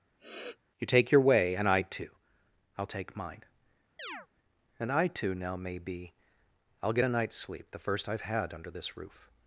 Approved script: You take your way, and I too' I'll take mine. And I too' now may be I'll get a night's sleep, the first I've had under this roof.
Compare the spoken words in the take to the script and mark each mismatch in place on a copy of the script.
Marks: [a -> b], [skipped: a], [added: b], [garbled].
You take your way, and I too' I'll take mine. And I too' now may be I'll get a night's sleep, the first I've had under this roof.